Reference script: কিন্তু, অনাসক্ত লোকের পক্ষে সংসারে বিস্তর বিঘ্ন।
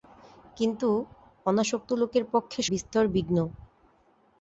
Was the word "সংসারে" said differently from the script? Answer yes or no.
yes